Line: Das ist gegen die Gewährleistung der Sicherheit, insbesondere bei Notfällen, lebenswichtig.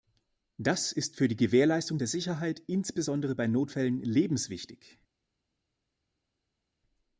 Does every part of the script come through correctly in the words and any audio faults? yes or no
no